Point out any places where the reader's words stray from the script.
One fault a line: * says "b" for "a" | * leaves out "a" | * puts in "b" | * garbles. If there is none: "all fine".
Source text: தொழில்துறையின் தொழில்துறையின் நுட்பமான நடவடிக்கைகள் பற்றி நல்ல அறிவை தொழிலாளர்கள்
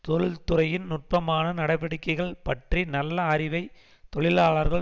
* leaves out "தொழில்துறையின்"